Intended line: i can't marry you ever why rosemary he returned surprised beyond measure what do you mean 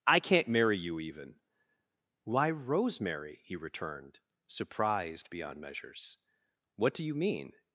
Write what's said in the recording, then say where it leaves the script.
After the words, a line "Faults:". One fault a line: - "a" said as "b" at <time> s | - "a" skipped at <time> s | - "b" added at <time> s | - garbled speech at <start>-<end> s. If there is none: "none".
i can't marry you even why rosemary he returned surprised beyond measures what do you mean
Faults:
- "ever" said as "even" at 1.0 s
- "measure" said as "measures" at 5.6 s